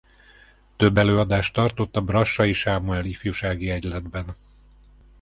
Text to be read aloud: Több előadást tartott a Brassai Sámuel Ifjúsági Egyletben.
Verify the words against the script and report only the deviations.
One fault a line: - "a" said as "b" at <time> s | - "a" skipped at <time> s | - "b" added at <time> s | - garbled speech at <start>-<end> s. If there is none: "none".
none